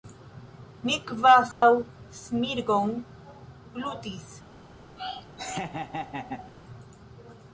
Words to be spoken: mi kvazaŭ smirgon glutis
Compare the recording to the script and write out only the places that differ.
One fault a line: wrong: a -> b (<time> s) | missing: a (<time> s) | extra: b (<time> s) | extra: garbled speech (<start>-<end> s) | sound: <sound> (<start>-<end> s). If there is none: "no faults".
sound: dropout (1.5-1.6 s)
sound: laugh (5.0-6.5 s)